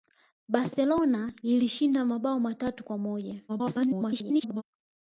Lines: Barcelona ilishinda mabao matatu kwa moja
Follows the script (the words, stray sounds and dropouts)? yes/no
no